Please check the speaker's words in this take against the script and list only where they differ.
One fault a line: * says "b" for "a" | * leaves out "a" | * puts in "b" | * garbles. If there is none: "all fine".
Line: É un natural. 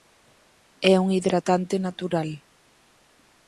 * puts in "hidratante"